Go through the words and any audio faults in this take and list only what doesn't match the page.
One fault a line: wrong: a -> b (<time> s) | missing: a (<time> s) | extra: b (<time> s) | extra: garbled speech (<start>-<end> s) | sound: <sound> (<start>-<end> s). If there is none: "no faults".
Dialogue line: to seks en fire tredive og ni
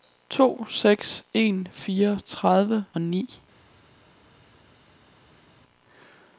no faults